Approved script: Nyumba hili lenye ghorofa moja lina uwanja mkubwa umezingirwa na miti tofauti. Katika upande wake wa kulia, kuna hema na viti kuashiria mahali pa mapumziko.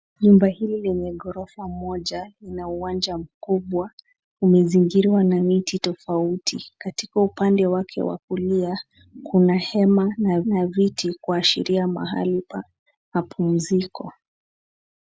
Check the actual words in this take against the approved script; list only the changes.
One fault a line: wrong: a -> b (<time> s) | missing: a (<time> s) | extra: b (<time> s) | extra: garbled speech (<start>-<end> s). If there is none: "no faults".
extra: na (10.4 s)